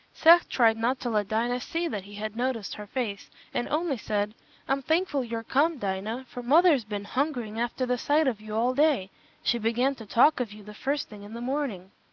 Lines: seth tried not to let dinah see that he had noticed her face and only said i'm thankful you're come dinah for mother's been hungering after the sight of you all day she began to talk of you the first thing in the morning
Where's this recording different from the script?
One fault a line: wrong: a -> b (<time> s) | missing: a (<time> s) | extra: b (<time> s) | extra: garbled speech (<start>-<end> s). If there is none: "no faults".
no faults